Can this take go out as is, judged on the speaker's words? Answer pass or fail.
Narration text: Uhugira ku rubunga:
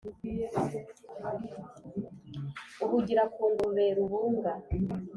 fail